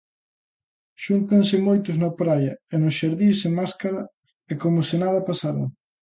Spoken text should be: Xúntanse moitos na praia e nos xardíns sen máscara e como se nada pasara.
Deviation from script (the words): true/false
false